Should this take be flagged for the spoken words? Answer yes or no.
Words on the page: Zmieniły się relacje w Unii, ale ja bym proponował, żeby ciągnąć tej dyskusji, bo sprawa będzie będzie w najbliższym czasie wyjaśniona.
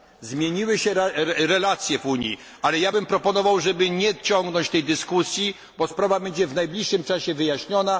yes